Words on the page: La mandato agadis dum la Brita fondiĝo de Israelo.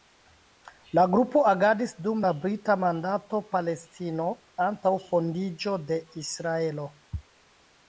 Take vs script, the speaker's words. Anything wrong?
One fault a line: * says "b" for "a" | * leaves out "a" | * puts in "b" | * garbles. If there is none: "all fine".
* says "grupo" for "mandato"
* puts in "mandato Palestino antaŭ"